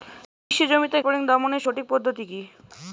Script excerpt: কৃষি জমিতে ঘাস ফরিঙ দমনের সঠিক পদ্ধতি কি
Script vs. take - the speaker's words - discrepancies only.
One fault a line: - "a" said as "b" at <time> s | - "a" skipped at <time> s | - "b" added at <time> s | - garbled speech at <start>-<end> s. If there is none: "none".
- "ঘাস" skipped at 1.0 s